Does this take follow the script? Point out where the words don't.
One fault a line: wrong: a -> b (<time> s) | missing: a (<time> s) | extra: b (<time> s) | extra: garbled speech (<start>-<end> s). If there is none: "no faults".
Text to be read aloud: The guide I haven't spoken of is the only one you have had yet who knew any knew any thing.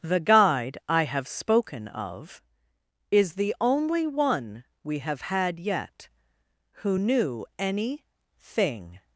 wrong: haven't -> have (1.0 s)
wrong: you -> we (4.8 s)
missing: knew any (8.0 s)